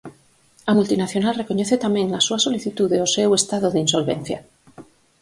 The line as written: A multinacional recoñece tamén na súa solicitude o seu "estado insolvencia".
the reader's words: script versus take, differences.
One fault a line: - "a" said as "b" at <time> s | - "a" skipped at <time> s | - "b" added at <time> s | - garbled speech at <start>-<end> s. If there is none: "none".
- "de" added at 3.7 s